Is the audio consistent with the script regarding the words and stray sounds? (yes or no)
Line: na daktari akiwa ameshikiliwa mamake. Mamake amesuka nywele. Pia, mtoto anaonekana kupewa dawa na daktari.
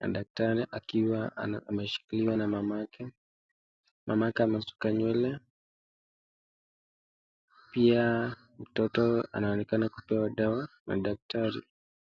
no